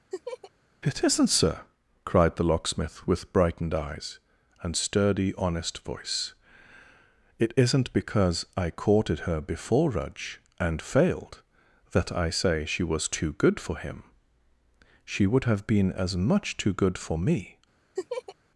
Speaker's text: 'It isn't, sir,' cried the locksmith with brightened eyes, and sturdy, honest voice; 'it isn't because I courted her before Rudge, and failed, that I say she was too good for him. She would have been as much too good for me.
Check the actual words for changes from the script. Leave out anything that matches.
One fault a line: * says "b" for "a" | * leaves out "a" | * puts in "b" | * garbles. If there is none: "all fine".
all fine